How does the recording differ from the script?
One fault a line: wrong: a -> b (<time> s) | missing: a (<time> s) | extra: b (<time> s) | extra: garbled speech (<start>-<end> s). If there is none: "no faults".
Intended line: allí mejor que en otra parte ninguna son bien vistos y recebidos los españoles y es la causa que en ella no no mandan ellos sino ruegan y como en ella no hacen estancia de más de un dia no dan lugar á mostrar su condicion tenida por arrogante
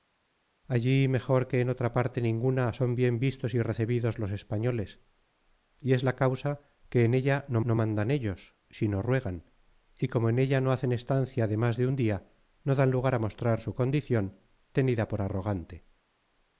no faults